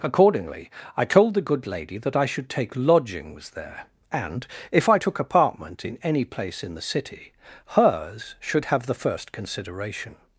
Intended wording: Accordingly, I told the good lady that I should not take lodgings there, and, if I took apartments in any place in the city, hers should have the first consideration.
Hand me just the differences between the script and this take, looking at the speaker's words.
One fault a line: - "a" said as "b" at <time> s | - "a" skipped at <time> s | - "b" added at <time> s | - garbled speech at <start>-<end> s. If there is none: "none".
- "not" skipped at 2.5 s
- "apartments" said as "apartment" at 5.2 s